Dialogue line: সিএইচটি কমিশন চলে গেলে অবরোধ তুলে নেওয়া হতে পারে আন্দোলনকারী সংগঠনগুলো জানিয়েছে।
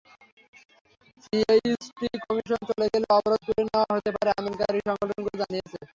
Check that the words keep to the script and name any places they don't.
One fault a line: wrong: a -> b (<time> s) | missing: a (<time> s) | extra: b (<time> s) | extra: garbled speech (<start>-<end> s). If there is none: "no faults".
no faults